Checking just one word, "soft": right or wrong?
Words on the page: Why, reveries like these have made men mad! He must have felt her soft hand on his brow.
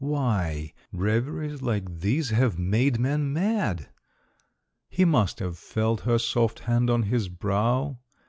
right